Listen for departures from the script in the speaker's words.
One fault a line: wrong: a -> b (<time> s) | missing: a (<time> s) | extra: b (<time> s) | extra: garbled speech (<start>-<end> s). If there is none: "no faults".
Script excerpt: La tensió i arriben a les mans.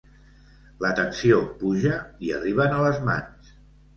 extra: puja (1.6 s)